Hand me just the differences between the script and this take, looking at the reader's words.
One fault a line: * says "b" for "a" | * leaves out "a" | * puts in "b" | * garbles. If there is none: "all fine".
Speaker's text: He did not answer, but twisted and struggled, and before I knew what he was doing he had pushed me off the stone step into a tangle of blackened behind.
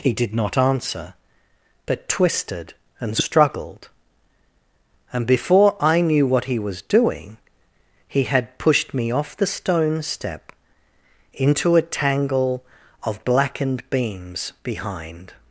* puts in "beams"